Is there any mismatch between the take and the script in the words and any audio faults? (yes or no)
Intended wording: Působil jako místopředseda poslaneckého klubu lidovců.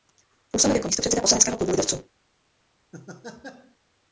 yes